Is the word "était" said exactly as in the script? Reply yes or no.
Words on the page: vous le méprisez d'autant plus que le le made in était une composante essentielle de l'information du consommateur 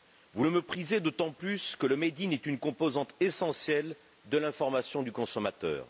no